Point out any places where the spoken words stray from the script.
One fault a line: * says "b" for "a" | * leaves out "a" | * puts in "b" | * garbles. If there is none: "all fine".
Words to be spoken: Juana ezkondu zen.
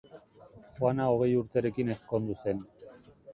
* puts in "hogei urterekin"